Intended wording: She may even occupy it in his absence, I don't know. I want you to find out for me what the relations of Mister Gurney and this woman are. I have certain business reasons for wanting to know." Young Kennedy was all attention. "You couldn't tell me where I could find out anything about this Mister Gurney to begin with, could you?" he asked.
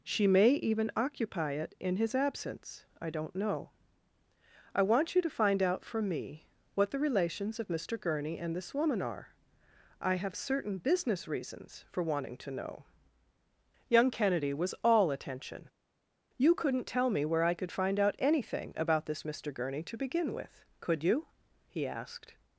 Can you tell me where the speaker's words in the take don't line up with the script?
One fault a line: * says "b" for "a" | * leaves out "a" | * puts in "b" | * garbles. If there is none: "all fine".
all fine